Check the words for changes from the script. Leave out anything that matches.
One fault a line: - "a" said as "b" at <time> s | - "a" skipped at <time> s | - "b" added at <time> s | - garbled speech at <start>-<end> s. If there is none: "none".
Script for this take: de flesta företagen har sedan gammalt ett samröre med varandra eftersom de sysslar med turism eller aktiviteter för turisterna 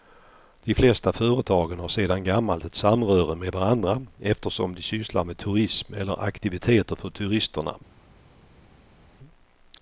none